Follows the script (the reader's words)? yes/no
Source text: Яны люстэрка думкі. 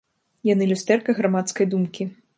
no